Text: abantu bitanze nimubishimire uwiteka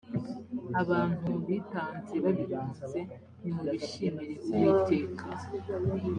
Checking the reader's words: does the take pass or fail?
fail